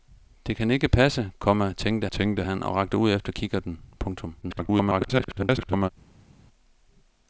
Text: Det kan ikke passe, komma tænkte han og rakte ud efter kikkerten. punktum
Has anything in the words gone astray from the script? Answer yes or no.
yes